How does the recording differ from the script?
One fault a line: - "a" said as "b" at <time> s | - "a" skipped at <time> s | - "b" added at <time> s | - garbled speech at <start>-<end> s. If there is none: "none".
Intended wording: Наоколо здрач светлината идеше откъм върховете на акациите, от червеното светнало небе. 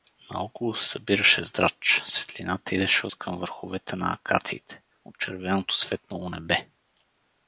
- "се събираше" added at 0.8 s